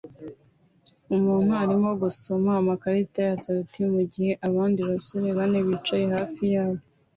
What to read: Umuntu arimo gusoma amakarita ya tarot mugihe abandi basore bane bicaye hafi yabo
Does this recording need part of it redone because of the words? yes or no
no